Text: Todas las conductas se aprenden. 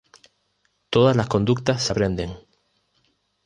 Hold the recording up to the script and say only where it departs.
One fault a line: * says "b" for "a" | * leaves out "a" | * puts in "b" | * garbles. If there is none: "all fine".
all fine